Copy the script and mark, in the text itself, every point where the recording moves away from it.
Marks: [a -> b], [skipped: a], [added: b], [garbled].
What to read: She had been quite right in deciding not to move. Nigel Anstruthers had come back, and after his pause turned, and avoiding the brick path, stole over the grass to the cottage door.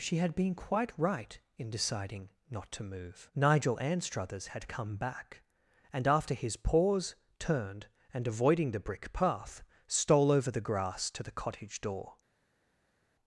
She had been quite right in deciding not to move. Nigel Anstruthers had come back, and after his pause turned, and avoiding the brick path, stole over the grass to the cottage door.